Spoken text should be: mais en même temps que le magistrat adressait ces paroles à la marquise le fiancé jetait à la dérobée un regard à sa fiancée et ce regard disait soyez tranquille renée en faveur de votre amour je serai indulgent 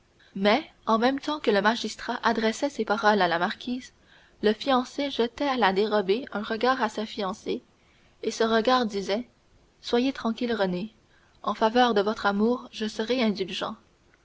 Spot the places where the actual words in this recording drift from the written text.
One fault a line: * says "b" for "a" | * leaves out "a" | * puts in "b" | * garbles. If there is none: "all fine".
all fine